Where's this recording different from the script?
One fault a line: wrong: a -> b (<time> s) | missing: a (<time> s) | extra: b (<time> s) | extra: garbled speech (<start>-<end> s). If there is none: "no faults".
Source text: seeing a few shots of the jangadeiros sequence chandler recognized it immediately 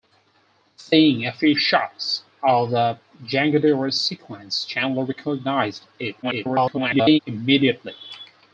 extra: garbled speech (6.2-7.2 s)